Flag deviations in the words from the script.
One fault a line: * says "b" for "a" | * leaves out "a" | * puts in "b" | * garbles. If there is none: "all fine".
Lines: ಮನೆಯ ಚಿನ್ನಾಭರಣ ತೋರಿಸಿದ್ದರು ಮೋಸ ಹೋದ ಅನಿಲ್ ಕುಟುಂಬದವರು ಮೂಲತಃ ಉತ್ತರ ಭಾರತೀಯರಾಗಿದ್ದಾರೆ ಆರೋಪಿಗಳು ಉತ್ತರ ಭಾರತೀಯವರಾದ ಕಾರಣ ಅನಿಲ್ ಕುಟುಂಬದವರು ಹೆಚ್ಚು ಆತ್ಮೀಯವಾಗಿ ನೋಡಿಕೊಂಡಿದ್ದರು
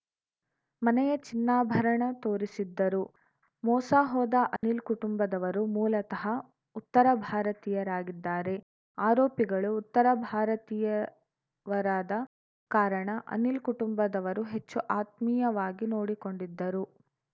all fine